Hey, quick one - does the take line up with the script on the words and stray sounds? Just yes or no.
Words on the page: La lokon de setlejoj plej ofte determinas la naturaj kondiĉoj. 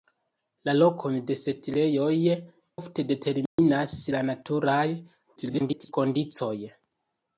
no